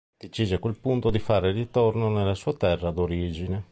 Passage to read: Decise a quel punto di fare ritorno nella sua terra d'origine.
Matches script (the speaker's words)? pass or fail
pass